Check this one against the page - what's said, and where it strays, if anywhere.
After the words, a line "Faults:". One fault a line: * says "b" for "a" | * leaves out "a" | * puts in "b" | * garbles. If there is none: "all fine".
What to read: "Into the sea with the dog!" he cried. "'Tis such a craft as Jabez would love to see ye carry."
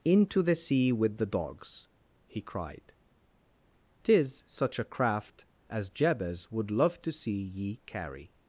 "Into the sea with the dogs!" he cried. "'Tis such a craft as Jabez would love to see ye carry."
Faults:
* says "dogs" for "dog"